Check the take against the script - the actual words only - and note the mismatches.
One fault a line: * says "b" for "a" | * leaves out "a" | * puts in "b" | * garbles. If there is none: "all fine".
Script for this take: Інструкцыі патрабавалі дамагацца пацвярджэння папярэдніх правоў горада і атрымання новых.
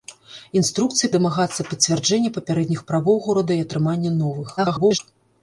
* leaves out "патрабавалі"
* garbles